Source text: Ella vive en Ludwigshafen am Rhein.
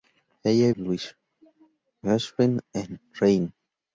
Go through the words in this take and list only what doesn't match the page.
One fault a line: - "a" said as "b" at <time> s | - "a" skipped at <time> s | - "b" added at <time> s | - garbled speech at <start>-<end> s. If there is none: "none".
- "vive en" skipped at 0.7 s